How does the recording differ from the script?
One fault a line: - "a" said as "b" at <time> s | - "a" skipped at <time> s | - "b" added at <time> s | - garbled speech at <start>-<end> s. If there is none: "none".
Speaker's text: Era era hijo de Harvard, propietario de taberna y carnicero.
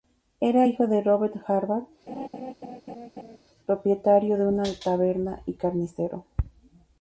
- "era" skipped at 0.7 s
- "Robert" added at 1.0 s
- "una" added at 4.4 s